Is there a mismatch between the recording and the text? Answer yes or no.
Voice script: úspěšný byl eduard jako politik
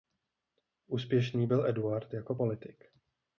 no